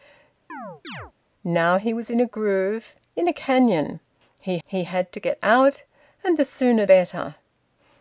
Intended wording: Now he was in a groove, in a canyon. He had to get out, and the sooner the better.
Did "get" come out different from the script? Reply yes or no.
no